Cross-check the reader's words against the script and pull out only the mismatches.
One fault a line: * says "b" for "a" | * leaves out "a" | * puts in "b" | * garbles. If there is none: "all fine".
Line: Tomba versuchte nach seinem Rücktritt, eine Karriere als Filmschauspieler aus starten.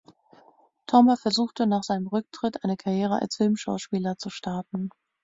* says "zu" for "aus"